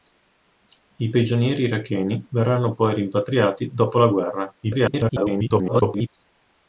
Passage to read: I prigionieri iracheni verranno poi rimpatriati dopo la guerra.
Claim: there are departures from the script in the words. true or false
true